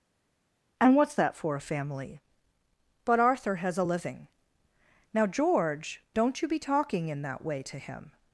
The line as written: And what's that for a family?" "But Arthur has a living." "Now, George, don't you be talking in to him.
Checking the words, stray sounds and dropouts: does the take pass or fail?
fail